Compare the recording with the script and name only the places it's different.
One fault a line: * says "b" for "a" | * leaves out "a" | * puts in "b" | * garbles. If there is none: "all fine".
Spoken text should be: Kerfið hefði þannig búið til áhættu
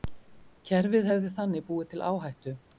all fine